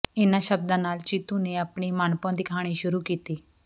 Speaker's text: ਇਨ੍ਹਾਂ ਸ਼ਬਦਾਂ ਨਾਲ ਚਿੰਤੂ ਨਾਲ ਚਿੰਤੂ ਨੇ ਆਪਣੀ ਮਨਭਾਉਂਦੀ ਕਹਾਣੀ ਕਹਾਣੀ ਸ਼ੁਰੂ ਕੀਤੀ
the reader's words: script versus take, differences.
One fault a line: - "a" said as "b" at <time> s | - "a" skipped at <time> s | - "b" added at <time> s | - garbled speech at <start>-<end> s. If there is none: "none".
- "ਨਾਲ ਚਿੰਤੂ" skipped at 1.4 s
- "ਕਹਾਣੀ" skipped at 2.7 s